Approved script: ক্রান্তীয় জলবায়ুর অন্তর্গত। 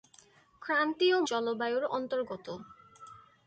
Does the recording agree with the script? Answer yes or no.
yes